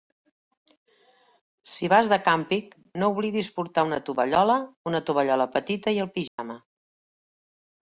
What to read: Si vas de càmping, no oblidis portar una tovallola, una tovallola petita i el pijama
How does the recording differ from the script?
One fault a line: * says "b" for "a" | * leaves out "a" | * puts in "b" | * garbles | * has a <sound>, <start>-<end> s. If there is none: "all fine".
* has a dropout, 6.3-6.4 s